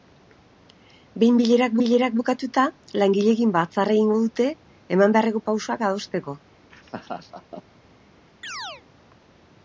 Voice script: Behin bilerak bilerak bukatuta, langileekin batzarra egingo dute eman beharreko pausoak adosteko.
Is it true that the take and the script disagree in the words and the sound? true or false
true